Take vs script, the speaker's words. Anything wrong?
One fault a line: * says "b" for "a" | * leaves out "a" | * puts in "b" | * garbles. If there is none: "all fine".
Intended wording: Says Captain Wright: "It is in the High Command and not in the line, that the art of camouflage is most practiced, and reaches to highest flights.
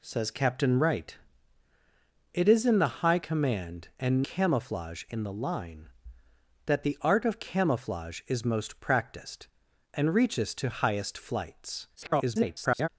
* says "camouflage" for "not"
* garbles